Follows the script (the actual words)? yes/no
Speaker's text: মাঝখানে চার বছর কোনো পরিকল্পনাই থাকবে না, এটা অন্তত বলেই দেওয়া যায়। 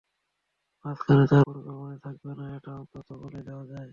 no